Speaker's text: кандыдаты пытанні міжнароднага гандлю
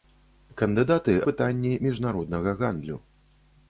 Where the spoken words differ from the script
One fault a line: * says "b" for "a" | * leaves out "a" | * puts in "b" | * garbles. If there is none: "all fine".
all fine